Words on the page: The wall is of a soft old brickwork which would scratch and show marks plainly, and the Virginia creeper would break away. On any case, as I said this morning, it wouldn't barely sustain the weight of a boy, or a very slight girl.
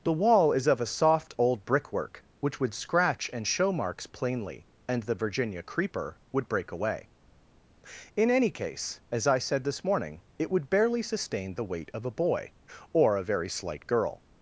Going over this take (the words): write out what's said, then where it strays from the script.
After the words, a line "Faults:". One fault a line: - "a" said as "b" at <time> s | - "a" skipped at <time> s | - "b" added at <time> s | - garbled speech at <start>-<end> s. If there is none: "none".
The wall is of a soft old brickwork which would scratch and show marks plainly, and the Virginia creeper would break away. In any case, as I said this morning, it would barely sustain the weight of a boy, or a very slight girl.
Faults:
- "On" said as "In" at 8.2 s
- "wouldn't" said as "would" at 10.5 s